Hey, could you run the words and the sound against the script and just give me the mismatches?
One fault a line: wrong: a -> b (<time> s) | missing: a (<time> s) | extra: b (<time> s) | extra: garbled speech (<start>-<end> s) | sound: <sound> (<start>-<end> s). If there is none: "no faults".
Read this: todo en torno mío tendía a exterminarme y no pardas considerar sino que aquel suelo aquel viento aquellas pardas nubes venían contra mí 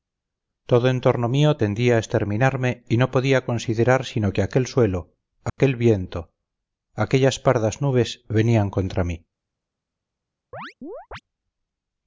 wrong: pardas -> podía (3.1 s)
sound: dropout (5.5-5.6 s)
sound: chirp (10.5-11.2 s)